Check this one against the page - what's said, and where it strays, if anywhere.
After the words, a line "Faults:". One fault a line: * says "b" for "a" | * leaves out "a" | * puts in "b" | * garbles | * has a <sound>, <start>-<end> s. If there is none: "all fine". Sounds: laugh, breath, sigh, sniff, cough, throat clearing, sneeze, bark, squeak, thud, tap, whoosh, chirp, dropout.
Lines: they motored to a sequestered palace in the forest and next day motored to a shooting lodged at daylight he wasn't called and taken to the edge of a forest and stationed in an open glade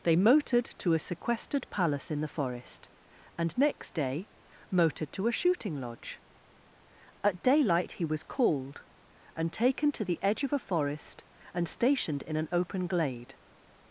they motored to a sequestered palace in the forest and next day motored to a shooting lodge at daylight he was called and taken to the edge of a forest and stationed in an open glade
Faults:
* says "lodge" for "lodged"
* says "was" for "wasn't"